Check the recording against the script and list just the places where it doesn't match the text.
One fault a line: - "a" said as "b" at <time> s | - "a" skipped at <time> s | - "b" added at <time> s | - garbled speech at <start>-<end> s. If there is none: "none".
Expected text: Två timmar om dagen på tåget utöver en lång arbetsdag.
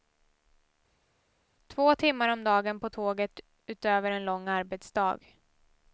none